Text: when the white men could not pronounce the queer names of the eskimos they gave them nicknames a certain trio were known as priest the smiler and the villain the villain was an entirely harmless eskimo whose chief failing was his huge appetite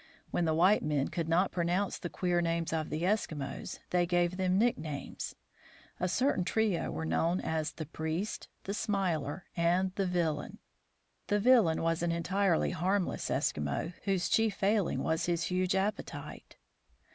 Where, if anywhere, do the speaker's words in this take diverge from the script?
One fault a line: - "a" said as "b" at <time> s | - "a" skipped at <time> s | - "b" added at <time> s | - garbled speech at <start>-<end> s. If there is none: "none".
- "the" added at 7.7 s